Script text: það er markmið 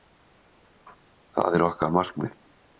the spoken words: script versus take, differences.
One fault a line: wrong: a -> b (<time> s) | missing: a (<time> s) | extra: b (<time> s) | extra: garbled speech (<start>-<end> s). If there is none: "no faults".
extra: okkar (1.7 s)